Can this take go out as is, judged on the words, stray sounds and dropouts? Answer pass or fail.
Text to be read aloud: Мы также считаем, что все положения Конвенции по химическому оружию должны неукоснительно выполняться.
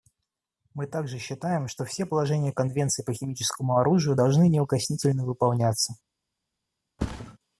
fail